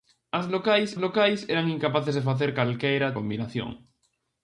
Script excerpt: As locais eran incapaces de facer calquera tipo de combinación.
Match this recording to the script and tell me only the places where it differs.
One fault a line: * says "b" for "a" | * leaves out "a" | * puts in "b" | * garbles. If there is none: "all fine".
* puts in "locais"
* leaves out "tipo de"